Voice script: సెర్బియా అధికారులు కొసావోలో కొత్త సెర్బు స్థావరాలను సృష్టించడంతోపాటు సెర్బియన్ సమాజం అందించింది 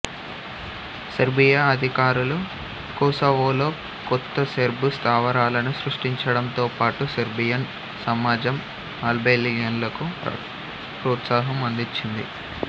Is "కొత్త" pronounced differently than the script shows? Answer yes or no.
no